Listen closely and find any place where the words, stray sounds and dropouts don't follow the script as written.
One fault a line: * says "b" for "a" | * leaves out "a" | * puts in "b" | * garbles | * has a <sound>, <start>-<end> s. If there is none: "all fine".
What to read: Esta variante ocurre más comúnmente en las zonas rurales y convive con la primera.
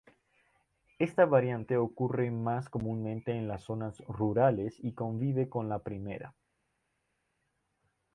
all fine